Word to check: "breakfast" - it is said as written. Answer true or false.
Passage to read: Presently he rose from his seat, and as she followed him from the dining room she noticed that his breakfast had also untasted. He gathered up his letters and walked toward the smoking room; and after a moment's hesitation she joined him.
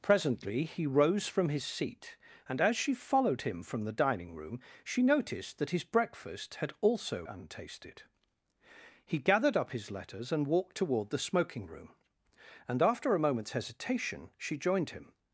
true